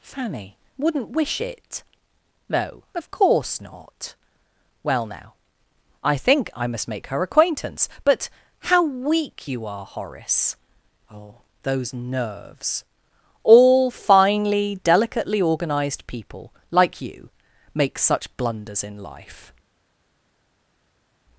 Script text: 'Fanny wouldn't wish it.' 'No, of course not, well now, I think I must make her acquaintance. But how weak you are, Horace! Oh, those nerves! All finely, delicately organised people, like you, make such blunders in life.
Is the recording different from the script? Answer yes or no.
no